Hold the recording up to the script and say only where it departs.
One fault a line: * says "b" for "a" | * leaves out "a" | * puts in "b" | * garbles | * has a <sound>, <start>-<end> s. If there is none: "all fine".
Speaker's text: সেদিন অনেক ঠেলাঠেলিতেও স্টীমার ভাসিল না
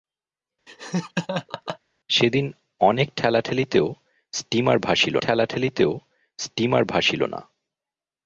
* has a laugh, 0.7-1.8 s
* puts in "ঠেলাঠেলিতেও স্টীমার ভাসিল"